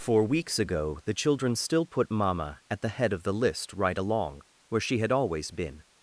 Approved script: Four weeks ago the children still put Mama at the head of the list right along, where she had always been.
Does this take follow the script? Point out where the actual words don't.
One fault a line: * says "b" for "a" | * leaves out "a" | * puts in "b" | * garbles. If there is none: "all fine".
all fine